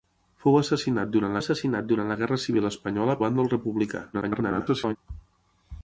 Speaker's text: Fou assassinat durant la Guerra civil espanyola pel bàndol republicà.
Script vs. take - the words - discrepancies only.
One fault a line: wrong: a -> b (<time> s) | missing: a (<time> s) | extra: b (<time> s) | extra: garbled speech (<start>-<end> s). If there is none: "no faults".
extra: assassinat durant (1.4 s)
missing: pel (3.2 s)
extra: garbled speech (4.1-5.0 s)